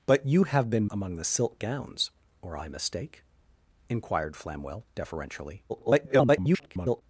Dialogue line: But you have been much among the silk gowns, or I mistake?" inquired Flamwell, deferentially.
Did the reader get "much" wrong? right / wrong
wrong